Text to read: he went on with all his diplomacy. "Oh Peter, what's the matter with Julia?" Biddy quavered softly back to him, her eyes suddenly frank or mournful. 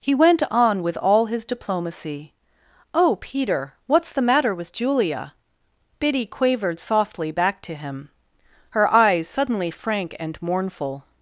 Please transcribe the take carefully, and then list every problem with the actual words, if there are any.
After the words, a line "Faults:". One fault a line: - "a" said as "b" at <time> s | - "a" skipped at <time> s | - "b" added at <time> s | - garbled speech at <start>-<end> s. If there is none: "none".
he went on with all his diplomacy. "Oh Peter, what's the matter with Julia?" Biddy quavered softly back to him, her eyes suddenly frank and mournful.
Faults:
- "or" said as "and" at 10.2 s